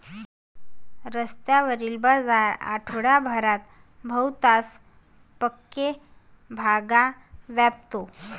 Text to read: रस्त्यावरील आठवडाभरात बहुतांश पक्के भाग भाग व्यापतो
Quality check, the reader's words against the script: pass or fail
fail